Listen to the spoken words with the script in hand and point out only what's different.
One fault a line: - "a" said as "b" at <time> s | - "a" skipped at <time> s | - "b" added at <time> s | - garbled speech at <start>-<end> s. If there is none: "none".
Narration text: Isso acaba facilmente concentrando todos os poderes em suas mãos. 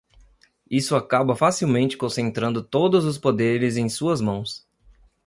none